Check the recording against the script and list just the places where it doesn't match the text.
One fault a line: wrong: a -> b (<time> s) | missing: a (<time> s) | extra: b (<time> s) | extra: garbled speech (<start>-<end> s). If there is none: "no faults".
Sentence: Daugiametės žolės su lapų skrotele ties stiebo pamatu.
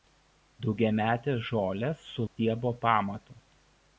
missing: lapų skrotele ties (2.2 s)